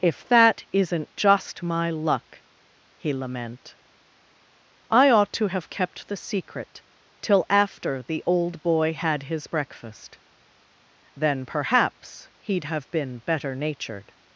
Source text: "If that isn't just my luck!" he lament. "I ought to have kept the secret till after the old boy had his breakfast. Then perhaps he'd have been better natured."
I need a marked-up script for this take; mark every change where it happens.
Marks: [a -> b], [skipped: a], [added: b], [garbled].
"If that isn't just my luck!" he lament. "I ought to have kept the secret till after the old boy had his breakfast. Then perhaps he'd have been better natured."